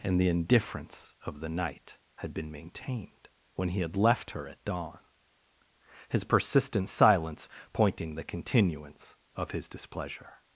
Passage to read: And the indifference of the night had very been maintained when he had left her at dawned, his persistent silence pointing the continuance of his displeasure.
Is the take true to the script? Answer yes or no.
no